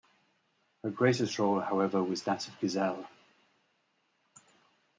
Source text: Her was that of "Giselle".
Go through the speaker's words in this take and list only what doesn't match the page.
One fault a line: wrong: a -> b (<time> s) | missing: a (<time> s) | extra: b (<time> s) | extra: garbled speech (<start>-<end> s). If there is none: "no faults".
extra: greatest role however (0.9 s)